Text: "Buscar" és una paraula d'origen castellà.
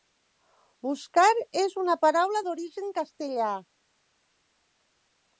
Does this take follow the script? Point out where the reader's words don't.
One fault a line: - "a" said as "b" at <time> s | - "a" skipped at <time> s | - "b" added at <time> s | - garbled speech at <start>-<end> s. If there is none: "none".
none